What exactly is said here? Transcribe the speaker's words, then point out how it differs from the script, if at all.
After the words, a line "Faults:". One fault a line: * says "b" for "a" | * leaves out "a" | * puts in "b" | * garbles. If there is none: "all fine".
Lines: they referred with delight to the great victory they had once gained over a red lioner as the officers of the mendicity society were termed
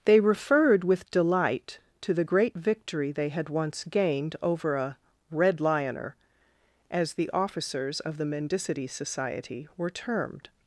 they referred with delight to the great victory they had once gained over a red lioner as the officers of the mendicity society were termed
Faults:
all fine